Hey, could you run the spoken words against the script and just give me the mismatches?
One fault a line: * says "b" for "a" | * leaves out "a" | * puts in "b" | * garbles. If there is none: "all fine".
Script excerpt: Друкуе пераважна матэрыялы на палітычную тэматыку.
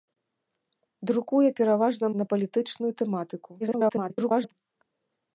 * leaves out "матэрыялы"
* garbles